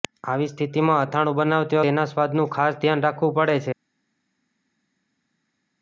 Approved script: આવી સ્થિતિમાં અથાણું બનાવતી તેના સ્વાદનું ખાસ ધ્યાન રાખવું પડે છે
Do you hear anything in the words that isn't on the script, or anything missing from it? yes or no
no